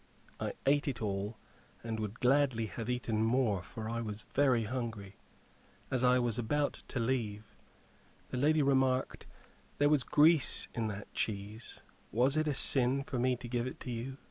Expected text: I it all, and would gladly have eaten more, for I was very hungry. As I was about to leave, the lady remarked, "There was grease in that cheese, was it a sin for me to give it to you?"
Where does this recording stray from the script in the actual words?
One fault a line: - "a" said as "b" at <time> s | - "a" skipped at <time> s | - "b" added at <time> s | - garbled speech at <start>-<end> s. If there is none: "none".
- "ate" added at 0.7 s